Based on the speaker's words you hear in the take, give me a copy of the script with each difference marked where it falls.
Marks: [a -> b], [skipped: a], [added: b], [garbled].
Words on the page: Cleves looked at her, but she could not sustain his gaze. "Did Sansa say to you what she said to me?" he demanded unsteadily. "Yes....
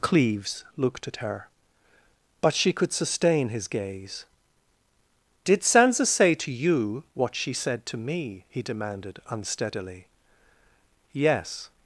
Cleves looked at her, but she could [skipped: not] sustain his gaze. "Did Sansa say to you what she said to me?" he demanded unsteadily. "Yes....